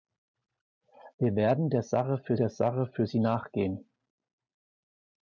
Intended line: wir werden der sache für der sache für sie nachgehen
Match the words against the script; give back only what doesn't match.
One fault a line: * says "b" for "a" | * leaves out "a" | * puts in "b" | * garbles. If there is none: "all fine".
all fine